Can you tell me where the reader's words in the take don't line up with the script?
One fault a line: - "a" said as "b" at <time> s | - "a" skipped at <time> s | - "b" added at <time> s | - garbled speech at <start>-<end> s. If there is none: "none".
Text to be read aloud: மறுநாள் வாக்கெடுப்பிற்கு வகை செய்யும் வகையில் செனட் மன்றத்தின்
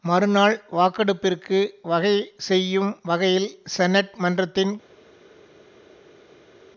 none